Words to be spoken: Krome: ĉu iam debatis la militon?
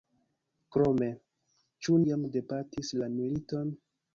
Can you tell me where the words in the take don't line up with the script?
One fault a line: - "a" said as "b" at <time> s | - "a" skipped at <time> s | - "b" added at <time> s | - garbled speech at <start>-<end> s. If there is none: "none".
none